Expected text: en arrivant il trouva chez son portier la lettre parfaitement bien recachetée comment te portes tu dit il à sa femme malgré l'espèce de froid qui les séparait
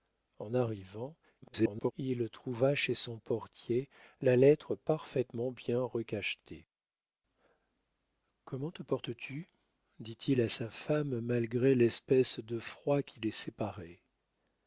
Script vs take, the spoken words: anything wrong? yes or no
yes